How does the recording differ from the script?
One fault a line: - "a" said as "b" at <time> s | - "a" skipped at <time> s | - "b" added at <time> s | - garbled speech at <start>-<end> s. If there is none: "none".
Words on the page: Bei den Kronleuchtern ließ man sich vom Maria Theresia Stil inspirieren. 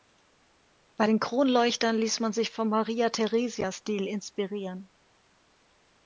none